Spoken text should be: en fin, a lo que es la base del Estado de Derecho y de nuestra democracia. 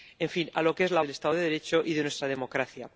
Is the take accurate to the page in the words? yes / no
no